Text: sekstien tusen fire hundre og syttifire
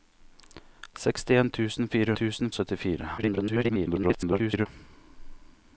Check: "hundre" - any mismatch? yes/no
yes